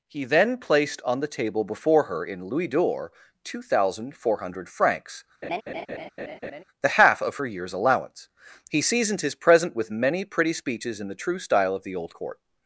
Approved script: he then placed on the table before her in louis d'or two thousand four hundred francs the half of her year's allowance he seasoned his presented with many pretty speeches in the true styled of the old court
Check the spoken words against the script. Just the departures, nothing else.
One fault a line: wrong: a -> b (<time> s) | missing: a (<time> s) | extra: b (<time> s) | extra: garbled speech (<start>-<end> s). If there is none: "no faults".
wrong: presented -> present (9.3 s)
wrong: styled -> style (11.4 s)